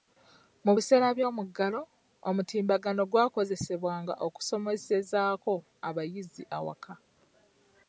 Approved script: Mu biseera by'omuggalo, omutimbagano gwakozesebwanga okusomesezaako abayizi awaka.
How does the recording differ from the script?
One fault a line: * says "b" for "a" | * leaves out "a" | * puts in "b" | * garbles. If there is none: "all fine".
all fine